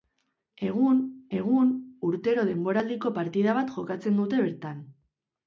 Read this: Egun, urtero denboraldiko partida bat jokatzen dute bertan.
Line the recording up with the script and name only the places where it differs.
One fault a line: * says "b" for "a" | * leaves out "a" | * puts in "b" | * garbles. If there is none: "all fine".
* puts in "egun"